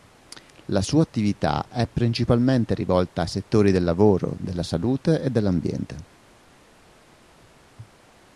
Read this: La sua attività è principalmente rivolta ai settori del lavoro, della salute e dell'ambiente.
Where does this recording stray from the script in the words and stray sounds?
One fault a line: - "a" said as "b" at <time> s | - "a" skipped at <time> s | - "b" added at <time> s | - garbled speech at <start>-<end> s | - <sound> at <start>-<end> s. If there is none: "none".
none